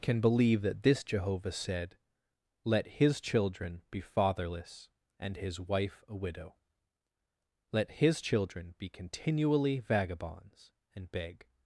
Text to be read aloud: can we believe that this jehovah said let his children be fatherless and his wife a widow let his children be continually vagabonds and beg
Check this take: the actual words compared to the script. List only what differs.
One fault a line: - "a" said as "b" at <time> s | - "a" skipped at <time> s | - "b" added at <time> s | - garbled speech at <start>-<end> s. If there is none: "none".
- "we" skipped at 0.2 s